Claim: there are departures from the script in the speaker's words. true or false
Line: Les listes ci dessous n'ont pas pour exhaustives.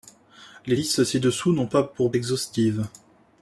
false